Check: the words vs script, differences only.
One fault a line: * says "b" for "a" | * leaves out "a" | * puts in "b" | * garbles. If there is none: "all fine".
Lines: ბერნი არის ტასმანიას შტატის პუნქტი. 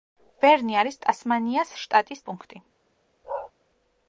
all fine